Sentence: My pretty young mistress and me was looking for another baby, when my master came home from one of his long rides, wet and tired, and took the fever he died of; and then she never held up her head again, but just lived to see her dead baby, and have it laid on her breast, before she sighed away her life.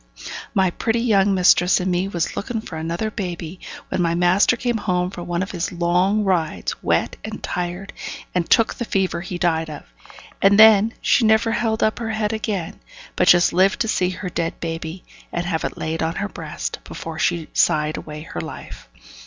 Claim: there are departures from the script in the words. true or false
false